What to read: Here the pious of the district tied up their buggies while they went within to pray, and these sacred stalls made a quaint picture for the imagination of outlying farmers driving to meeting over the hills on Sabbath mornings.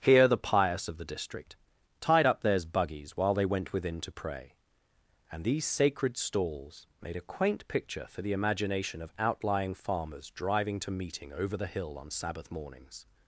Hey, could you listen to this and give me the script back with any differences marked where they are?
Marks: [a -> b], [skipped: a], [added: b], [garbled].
Here the pious of the district tied up [their -> theirs] buggies while they went within to pray, and these sacred stalls made a quaint picture for the imagination of outlying farmers driving to meeting over the [hills -> hill] on Sabbath mornings.